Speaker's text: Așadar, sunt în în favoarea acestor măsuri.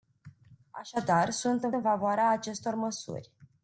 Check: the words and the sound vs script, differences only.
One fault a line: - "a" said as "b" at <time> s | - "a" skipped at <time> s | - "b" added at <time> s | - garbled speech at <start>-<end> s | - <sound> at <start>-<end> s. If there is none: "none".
none